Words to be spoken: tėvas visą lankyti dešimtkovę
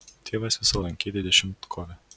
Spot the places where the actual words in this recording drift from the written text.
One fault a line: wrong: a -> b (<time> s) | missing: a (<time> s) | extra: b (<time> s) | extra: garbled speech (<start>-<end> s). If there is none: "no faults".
no faults